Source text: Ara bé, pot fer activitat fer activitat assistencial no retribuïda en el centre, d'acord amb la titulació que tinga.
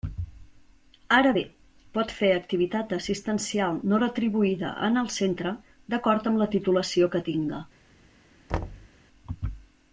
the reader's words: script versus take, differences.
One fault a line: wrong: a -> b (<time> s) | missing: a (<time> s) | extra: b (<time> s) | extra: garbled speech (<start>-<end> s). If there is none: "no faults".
missing: fer activitat (2.9 s)